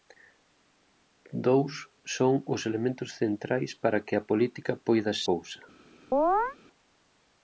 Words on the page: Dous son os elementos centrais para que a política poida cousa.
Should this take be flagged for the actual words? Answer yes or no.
no